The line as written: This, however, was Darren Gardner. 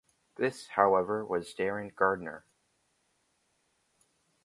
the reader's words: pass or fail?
pass